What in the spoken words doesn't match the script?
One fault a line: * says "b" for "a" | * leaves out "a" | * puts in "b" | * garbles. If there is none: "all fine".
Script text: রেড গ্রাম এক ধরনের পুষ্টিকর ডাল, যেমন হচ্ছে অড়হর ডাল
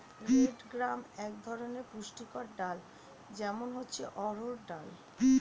all fine